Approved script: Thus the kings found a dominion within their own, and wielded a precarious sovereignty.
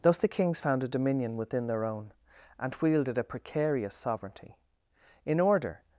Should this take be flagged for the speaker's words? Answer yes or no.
yes